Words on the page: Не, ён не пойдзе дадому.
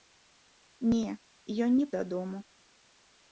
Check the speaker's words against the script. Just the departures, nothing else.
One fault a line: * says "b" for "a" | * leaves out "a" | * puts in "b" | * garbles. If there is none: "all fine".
* leaves out "пойдзе"